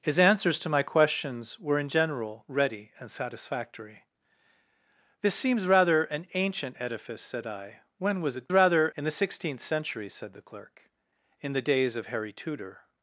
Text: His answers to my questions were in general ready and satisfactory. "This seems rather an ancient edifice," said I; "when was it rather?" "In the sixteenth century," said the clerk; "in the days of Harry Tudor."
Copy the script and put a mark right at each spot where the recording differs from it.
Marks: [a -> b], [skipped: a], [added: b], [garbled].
His answers to my questions were in general ready and satisfactory. "This seems rather an ancient edifice," said I; "when was it rather?" "In the sixteenth century," said the clerk; "in the days of Harry Tudor."